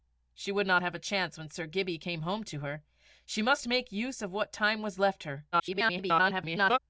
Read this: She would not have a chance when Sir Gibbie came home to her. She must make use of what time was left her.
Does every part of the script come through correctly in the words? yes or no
no